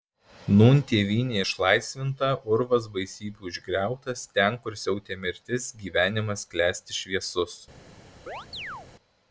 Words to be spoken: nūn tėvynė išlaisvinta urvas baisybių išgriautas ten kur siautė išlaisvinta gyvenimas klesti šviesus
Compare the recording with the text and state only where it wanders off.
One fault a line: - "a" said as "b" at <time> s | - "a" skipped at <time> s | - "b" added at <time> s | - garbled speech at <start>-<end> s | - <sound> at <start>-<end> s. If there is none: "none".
- "išlaisvinta" said as "mirtis" at 5.3 s
- chirp at 8.3-8.9 s